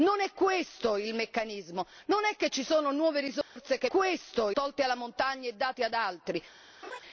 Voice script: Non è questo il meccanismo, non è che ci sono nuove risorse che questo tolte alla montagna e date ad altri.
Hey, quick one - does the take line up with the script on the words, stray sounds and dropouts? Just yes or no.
no